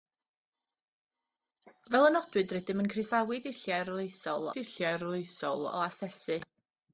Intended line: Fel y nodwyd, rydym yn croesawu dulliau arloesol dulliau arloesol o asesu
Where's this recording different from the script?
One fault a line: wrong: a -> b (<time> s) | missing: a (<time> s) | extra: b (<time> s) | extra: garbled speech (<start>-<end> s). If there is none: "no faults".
no faults